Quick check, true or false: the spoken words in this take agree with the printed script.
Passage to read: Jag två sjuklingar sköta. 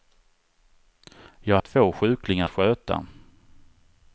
true